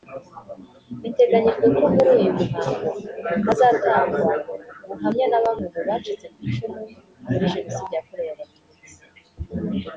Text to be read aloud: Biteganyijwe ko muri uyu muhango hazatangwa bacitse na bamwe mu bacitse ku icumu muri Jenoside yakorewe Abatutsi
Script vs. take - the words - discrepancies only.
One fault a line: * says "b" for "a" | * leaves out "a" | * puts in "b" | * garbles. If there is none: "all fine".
* says "ubuhamya" for "bacitse"